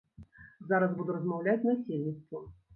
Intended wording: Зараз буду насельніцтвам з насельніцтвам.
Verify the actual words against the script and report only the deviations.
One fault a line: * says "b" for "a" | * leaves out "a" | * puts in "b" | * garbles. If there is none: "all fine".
* says "размаўляць" for "насельніцтвам"